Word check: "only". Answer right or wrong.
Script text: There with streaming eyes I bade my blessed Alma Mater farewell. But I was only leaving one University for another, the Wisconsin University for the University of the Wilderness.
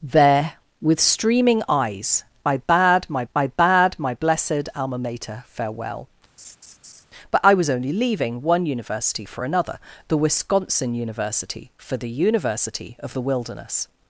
right